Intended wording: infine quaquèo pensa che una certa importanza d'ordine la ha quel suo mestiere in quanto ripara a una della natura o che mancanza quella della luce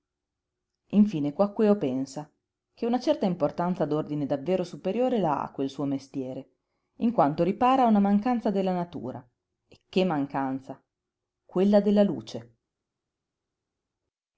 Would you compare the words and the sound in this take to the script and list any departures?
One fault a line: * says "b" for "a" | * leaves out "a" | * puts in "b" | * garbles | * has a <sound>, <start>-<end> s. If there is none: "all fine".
* puts in "davvero superiore"
* puts in "mancanza"
* says "e" for "o"